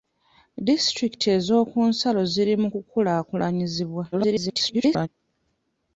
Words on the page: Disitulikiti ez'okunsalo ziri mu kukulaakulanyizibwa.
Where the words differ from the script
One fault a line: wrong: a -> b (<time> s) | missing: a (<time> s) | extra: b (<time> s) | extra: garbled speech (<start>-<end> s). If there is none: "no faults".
extra: garbled speech (4.1-5.1 s)